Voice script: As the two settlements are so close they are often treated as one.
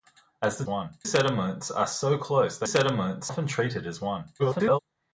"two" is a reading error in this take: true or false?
true